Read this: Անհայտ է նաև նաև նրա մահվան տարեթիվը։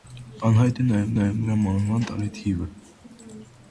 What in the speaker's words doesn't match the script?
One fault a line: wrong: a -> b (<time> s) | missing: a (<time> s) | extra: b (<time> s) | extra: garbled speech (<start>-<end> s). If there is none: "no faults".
no faults